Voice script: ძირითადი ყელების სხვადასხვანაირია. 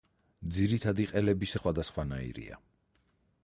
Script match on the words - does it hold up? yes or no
yes